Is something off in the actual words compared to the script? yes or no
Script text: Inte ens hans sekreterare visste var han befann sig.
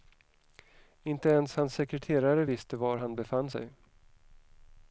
no